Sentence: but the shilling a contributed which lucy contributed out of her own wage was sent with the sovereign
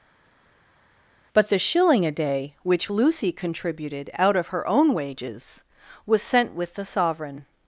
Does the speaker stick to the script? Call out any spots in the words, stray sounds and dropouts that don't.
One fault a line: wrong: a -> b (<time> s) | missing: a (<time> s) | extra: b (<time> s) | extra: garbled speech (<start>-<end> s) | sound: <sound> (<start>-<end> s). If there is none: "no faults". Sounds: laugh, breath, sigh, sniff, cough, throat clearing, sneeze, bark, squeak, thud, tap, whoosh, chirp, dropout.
wrong: contributed -> day (2.1 s)
wrong: wage -> wages (4.9 s)